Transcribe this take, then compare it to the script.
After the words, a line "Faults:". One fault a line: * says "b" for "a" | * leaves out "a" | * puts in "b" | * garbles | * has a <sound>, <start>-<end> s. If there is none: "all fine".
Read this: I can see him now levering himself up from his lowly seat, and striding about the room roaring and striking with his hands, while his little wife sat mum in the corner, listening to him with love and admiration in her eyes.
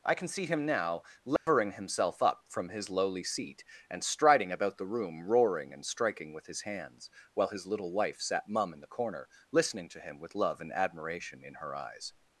I can see him now levering himself up from his lowly seat, and striding about the room roaring and striking with his hands, while his little wife sat mum in the corner, listening to him with love and admiration in her eyes.
Faults:
* has a dropout, 1.4-1.5 s